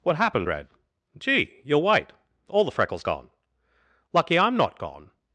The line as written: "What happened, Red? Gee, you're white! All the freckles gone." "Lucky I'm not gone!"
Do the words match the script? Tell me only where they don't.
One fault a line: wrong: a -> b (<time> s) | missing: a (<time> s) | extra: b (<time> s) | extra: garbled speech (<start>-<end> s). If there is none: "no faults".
no faults